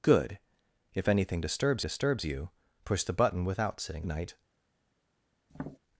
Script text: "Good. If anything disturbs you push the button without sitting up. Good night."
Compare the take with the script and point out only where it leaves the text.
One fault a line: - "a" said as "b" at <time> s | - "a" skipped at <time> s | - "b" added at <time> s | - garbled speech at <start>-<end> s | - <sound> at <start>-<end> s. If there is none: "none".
- "disturbs" added at 1.8 s
- "up Good" skipped at 4.1 s
- tap at 5.5-5.8 s